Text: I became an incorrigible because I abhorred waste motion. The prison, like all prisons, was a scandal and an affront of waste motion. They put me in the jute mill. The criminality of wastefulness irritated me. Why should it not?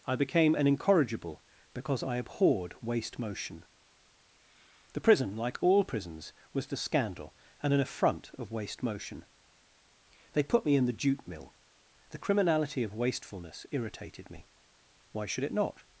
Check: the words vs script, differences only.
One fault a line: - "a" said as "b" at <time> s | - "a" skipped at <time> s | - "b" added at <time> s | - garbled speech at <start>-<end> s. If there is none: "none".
- "a" said as "the" at 6.7 s